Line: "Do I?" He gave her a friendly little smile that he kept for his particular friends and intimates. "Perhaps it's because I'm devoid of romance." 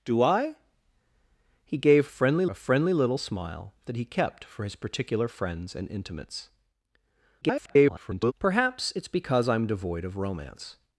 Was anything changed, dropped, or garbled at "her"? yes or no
yes